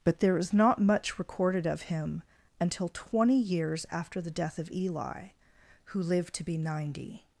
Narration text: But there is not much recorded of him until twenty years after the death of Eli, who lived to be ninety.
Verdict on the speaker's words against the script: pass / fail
pass